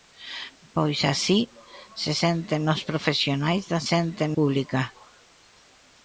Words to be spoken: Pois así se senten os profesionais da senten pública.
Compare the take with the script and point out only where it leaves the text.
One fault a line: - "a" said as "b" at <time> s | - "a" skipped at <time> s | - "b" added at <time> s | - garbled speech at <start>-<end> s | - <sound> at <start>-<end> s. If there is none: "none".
none